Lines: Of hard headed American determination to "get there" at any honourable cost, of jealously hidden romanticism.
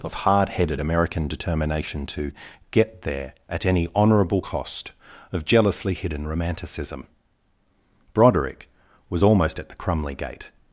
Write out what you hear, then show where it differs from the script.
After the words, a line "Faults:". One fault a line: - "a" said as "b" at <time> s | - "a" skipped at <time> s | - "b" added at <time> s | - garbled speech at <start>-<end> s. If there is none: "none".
Of hard headed American determination to "get there" at any honourable cost, of jealously hidden romanticism. Broderick was almost at the Crumley gate
Faults:
- "Broderick was almost at the Crumley gate" added at 8.1 s